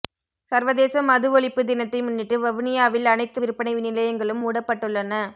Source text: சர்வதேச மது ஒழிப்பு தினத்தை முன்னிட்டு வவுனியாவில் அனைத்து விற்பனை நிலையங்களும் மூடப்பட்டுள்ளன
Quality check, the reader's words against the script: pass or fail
pass